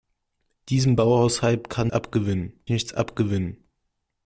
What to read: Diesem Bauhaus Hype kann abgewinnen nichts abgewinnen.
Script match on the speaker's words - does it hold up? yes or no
yes